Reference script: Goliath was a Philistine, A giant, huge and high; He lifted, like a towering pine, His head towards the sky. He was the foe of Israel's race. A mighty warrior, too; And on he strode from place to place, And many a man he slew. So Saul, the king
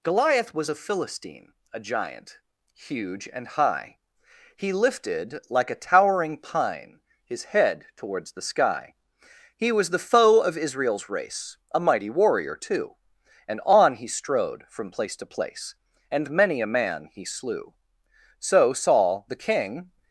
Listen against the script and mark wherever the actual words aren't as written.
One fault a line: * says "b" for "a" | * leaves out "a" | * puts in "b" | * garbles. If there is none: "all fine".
all fine